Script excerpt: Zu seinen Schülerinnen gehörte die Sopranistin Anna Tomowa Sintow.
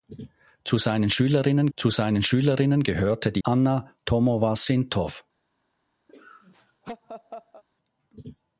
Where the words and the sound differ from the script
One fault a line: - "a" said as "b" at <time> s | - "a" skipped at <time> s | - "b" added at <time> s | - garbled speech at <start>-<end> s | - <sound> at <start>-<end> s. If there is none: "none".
- "zu seinen Schülerinnen" added at 1.7 s
- "Sopranistin" skipped at 3.4 s
- laugh at 6.1-7.6 s